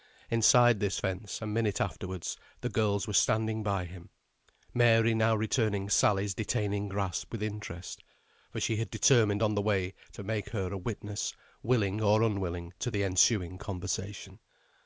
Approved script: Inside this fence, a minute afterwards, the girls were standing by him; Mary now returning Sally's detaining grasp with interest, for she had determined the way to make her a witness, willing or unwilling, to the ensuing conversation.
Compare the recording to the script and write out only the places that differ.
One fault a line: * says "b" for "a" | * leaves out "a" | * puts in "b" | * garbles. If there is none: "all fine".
* puts in "on"